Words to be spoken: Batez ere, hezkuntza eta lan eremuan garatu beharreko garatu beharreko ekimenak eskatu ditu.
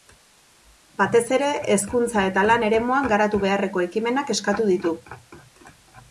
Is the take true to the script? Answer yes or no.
no